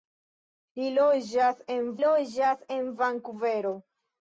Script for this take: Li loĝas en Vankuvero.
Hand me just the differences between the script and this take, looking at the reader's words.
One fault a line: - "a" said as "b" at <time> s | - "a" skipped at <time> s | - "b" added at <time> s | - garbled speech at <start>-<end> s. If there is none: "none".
- "loĝas en" added at 2.0 s